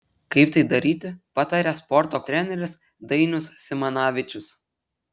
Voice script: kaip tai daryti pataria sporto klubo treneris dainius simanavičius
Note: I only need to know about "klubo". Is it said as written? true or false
false